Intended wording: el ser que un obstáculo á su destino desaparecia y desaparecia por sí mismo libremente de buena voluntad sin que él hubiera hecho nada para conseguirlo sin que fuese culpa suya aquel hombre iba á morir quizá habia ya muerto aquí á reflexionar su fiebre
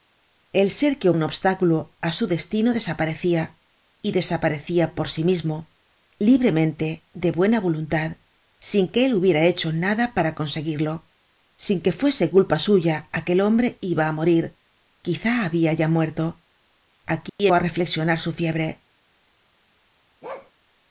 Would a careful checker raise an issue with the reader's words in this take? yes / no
no